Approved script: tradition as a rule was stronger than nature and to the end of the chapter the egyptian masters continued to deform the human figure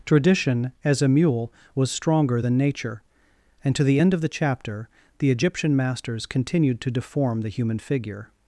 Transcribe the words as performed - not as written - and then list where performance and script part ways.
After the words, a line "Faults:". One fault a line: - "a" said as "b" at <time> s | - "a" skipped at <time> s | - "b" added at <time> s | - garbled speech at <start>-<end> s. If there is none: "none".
tradition as a mule was stronger than nature and to the end of the chapter the egyptian masters continued to deform the human figure
Faults:
- "rule" said as "mule" at 1.1 s